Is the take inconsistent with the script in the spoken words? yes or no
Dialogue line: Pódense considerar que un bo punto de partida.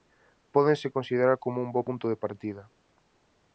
yes